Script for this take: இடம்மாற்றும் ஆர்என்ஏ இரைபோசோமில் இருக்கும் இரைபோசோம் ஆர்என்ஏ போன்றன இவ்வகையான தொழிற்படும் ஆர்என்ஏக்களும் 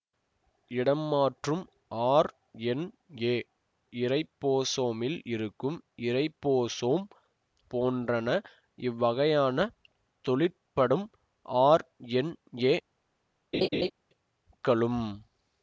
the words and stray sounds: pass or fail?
fail